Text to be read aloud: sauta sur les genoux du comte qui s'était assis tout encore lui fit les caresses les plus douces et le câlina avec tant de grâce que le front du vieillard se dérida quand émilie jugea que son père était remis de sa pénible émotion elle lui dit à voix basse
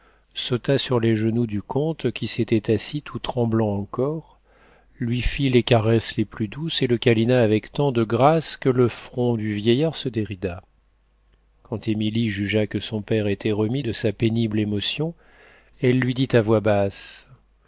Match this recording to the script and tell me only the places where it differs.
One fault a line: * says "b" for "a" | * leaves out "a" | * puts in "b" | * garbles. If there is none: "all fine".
* puts in "tremblant"